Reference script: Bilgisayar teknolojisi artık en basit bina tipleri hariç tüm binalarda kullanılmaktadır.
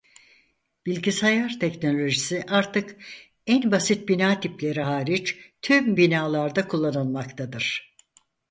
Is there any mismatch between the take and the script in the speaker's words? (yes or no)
no